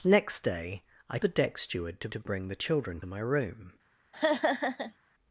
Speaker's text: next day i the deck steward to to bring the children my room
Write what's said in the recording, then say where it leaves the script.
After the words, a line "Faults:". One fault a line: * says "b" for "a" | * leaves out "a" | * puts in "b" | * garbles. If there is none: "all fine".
next day i the deck steward to to bring the children my room
Faults:
all fine